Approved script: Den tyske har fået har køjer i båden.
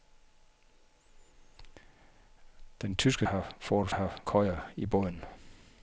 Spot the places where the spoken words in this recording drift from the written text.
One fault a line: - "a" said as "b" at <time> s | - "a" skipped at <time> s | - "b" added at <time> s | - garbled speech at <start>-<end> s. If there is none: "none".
none